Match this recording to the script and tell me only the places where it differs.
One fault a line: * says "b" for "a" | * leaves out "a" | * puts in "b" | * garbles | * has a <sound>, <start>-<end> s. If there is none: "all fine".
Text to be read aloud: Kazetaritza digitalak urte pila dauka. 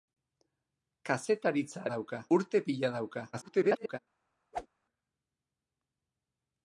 * says "dauka" for "digitalak"
* garbles
* has a whoosh, 4.5-4.7 s